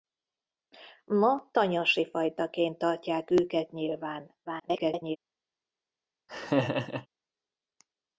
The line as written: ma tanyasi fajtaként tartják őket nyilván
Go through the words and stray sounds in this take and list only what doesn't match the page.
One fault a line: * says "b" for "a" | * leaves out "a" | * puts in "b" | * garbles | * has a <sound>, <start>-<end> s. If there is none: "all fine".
* garbles
* has a laugh, 6.3-7.1 s